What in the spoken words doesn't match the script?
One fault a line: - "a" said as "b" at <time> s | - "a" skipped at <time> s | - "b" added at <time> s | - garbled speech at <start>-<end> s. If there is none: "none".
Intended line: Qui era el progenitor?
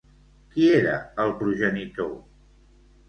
none